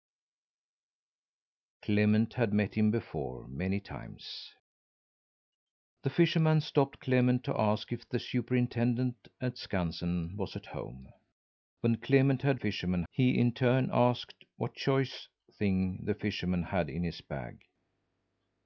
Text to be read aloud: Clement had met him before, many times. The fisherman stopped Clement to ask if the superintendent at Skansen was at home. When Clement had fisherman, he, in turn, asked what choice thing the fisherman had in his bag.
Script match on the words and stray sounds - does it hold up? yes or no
yes